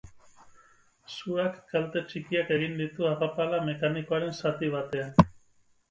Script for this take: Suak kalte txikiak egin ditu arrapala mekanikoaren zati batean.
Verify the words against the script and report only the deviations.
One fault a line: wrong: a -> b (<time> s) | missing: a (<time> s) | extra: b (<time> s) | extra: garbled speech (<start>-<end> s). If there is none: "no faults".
no faults